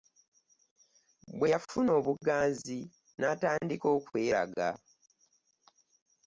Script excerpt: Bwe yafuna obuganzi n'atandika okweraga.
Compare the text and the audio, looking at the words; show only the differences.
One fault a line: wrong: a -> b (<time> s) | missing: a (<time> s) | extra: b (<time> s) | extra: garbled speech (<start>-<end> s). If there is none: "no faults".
no faults